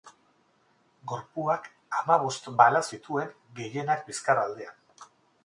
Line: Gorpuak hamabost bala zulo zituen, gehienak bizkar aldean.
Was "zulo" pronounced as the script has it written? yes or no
no